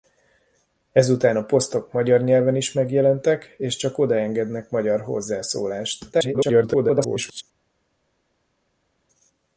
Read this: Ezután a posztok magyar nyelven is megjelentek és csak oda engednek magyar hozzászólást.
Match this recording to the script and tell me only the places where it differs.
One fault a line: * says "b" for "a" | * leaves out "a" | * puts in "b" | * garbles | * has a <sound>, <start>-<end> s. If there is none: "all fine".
* garbles